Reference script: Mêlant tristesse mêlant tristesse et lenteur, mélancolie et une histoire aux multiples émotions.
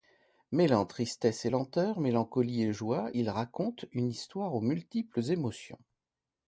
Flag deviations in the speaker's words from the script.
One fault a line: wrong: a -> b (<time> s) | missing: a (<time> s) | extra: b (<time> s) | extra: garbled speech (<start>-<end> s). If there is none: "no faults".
missing: mêlant tristesse (1.4 s)
extra: joie il raconte (2.7 s)